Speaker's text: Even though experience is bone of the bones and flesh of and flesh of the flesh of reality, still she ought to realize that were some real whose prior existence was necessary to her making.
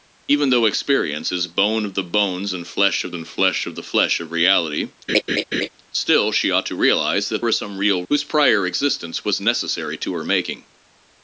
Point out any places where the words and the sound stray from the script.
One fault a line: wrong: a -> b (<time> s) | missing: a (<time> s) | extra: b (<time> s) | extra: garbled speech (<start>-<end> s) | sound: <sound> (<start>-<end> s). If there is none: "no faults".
sound: laugh (5.1-5.7 s)